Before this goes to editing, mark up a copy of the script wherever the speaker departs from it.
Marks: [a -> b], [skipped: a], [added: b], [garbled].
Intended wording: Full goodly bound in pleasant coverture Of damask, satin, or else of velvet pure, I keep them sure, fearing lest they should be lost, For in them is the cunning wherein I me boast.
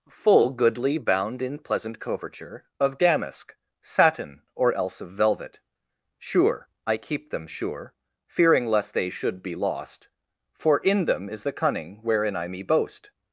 Full goodly bound in pleasant coverture Of damask, satin, or else of velvet [pure, -> sure] I keep them sure, fearing lest they should be lost, For in them is the cunning wherein I me boast.